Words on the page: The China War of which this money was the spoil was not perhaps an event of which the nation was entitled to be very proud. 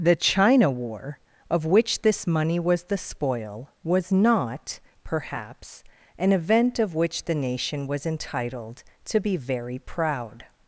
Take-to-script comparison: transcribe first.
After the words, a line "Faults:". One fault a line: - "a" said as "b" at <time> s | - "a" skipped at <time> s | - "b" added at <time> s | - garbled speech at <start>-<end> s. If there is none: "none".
The China War of which this money was the spoil was not perhaps an event of which the nation was entitled to be very proud.
Faults:
none